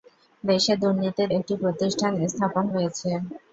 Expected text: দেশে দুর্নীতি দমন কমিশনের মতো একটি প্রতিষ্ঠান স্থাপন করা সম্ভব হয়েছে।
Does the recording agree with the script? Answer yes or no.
no